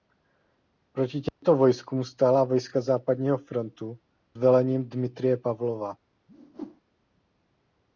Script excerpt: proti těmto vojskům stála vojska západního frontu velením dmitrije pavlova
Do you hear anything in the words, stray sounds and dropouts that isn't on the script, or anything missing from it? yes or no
yes